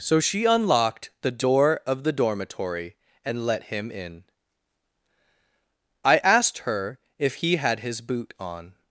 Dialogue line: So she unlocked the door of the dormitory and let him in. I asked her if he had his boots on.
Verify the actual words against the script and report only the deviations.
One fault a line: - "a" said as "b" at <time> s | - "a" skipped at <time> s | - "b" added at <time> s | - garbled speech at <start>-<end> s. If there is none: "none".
- "boots" said as "boot" at 8.0 s